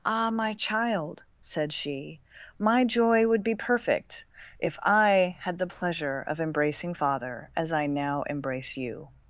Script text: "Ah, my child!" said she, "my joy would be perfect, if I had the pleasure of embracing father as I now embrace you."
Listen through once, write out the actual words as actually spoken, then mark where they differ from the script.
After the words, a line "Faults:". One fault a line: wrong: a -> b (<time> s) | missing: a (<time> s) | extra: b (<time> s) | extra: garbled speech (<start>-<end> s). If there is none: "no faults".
"Ah, my child!" said she, "my joy would be perfect, if I had the pleasure of embracing father as I now embrace you."
Faults:
no faults